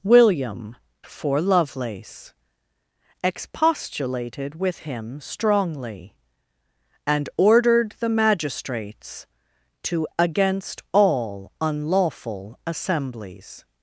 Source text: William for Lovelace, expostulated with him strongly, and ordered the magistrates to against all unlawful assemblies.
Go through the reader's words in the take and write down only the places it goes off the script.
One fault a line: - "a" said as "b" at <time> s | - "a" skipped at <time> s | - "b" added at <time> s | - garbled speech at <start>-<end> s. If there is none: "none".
none